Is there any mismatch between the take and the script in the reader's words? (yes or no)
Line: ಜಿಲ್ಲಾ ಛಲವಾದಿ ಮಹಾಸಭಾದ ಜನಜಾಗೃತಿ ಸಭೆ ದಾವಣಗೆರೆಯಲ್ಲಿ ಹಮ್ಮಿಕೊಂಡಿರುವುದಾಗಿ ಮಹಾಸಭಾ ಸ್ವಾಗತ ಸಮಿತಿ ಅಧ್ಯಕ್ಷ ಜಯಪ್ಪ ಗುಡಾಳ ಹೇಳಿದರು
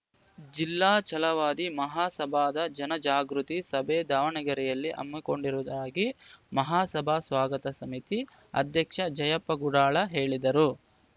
no